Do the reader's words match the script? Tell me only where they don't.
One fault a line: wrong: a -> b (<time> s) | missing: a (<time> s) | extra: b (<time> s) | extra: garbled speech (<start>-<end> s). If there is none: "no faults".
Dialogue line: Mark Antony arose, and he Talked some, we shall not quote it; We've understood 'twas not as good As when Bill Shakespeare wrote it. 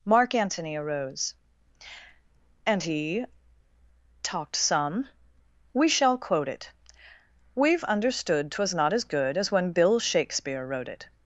missing: not (6.2 s)